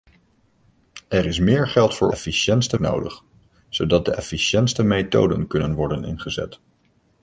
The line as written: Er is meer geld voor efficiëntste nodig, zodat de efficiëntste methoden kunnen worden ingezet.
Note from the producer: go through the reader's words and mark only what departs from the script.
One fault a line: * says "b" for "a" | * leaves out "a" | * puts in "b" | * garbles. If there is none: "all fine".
all fine